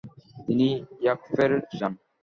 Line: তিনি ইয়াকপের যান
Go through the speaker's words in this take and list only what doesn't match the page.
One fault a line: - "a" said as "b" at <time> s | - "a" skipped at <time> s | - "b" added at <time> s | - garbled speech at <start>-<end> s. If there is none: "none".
none